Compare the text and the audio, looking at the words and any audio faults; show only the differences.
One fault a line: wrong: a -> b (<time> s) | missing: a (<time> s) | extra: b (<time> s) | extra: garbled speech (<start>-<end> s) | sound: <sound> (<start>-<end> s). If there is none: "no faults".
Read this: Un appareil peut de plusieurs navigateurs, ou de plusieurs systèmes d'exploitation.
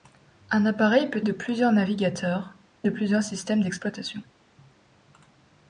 no faults